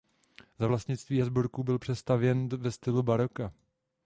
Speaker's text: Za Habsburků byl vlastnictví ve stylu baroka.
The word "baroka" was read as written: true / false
true